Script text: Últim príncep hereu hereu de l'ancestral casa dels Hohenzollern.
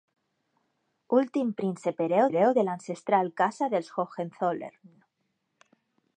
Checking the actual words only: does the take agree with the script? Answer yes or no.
yes